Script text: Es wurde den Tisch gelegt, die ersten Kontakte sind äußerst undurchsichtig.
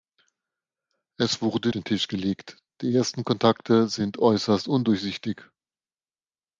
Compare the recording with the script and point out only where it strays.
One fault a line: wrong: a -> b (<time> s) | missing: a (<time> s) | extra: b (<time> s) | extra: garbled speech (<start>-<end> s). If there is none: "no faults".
no faults